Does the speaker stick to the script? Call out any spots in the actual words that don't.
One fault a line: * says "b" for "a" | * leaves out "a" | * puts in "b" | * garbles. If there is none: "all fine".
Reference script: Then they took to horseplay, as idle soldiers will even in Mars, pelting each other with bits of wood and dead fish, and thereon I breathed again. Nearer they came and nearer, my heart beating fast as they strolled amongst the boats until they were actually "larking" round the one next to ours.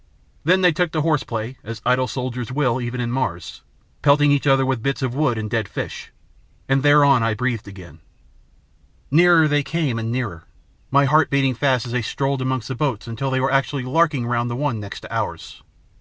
all fine